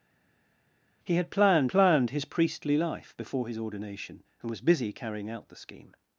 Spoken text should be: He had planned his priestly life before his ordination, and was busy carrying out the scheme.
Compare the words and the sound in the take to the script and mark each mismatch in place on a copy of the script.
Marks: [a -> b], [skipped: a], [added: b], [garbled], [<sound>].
He had planned [added: planned] his priestly life before his ordination, and was busy carrying out the scheme.